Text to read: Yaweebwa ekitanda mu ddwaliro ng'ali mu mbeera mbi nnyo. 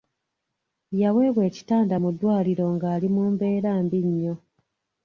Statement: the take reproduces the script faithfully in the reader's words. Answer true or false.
true